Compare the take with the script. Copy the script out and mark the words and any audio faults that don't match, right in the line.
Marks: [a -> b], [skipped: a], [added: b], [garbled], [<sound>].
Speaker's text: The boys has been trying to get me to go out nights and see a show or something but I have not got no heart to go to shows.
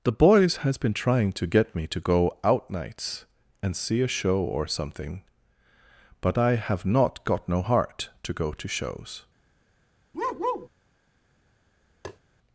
The boys has been trying to get me to go out nights and see a show or something but I have not got no heart to go to shows. [bark] [tap]